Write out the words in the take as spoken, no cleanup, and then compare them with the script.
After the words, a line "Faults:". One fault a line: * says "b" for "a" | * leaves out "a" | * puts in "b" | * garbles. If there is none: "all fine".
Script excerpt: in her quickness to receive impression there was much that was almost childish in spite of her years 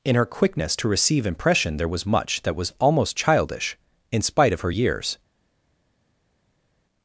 in her quickness to receive impression there was much that was almost childish in spite of her years
Faults:
all fine